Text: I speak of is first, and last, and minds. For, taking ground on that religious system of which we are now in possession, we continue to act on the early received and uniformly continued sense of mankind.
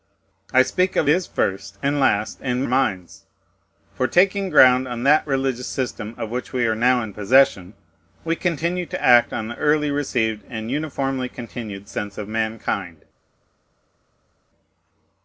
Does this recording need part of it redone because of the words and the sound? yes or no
no